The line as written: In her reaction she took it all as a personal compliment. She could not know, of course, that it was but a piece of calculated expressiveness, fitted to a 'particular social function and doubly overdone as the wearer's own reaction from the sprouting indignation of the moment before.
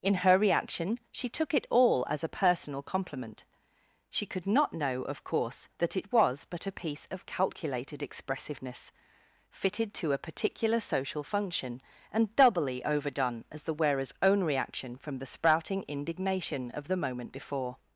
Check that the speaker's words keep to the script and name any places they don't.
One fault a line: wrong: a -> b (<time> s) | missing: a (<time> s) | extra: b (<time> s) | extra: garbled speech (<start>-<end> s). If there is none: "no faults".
no faults